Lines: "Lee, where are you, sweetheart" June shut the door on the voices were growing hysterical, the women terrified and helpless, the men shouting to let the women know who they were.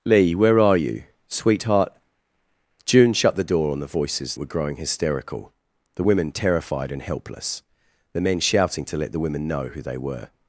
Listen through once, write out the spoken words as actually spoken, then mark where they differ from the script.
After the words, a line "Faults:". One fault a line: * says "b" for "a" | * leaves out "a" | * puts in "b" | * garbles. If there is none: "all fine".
"Lee, where are you, sweetheart" June shut the door on the voices were growing hysterical, the women terrified and helpless, the men shouting to let the women know who they were.
Faults:
all fine